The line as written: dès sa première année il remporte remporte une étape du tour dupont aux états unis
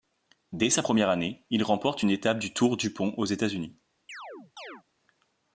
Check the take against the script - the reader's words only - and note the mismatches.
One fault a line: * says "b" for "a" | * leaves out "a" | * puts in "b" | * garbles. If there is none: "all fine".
* leaves out "remporte"